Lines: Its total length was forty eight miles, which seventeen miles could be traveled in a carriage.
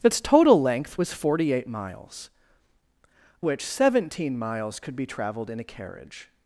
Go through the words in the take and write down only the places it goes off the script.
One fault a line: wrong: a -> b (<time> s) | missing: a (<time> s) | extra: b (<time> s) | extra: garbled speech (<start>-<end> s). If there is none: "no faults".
no faults